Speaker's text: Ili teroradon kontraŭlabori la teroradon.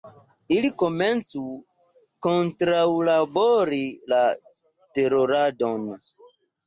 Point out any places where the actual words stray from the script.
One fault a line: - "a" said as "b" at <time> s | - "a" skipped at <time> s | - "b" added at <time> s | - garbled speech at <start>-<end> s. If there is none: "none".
- "teroradon" said as "komencu" at 0.8 s